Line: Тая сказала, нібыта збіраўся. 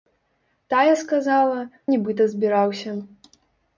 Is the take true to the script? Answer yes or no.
yes